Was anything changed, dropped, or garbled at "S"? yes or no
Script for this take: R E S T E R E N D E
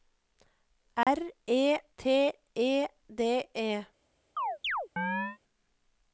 yes